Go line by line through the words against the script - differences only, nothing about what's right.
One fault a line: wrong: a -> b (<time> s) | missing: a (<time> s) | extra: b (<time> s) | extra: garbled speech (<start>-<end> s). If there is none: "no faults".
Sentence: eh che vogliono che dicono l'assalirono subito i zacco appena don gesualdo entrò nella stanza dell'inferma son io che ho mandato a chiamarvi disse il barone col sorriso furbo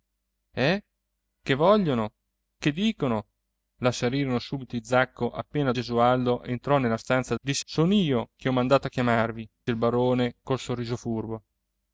missing: don (5.7 s)
wrong: dell'inferma -> disse (7.4 s)
missing: disse (9.5 s)